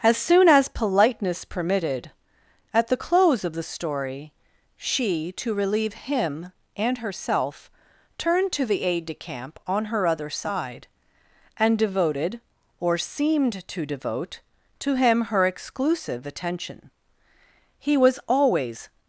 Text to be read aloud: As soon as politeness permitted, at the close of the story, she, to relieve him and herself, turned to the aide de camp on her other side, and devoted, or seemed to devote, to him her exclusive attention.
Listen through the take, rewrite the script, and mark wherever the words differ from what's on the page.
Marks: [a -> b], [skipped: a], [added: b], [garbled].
As soon as politeness permitted, at the close of the story, she, to relieve him and herself, turned to the aide de camp on her other side, and devoted, or seemed to devote, to him her exclusive attention. [added: He was always]